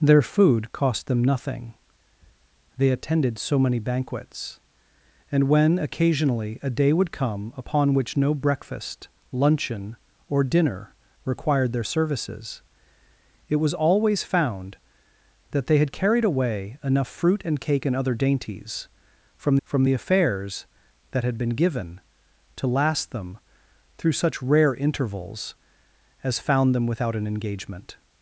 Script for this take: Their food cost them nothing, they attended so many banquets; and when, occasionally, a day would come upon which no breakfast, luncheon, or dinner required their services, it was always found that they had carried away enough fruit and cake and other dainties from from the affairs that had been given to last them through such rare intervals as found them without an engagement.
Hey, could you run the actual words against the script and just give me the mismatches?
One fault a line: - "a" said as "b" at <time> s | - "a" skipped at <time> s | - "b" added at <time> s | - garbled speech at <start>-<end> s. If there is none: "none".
none